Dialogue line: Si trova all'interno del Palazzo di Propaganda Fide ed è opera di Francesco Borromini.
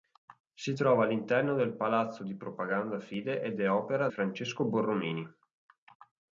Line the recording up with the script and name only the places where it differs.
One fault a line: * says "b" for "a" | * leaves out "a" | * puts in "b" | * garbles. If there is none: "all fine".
* leaves out "di"